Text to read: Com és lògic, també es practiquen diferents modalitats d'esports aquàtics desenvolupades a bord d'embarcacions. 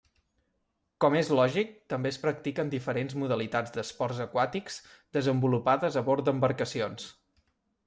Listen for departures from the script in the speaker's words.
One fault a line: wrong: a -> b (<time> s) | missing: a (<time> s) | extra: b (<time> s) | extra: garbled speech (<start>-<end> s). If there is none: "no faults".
no faults